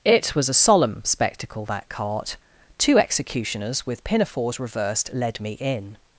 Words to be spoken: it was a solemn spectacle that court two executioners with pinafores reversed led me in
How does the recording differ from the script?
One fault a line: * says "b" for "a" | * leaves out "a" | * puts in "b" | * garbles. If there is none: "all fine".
* says "cart" for "court"